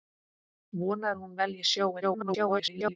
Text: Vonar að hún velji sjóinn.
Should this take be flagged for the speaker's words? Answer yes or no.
yes